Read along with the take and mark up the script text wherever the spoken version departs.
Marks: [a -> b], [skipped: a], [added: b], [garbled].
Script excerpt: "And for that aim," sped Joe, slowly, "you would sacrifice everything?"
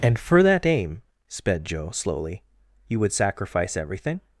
"And for that aim," sped Joe, slowly, "you would sacrifice everything?"